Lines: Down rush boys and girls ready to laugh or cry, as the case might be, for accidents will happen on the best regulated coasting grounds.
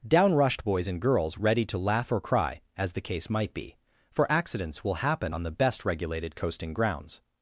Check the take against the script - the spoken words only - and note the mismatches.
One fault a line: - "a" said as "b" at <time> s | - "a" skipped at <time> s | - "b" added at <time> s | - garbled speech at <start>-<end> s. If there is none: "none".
- "rush" said as "rushed" at 0.3 s